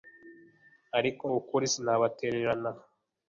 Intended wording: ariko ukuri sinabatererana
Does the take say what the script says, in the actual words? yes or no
yes